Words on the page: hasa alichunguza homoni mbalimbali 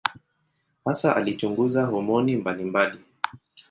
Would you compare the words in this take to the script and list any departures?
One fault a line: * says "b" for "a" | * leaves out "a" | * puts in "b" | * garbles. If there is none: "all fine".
all fine